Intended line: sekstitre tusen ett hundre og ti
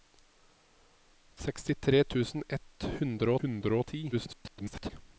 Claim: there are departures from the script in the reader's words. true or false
true